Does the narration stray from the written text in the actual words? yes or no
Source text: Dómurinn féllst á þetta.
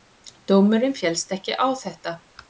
yes